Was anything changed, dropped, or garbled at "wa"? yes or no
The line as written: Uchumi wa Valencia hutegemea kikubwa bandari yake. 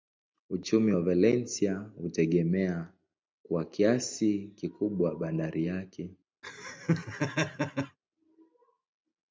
no